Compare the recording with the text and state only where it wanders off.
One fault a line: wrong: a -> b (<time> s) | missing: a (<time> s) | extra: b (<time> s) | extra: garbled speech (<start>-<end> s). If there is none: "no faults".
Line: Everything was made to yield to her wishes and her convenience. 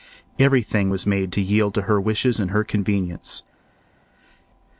no faults